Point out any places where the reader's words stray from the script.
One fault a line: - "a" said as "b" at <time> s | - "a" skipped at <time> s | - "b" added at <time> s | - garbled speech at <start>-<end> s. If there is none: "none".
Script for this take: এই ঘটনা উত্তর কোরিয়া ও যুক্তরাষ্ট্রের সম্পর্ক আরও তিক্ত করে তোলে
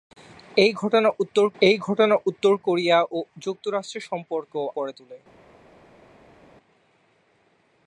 - "এই ঘটনা উত্তর" added at 1.6 s
- "আরও তিক্ত" skipped at 4.5 s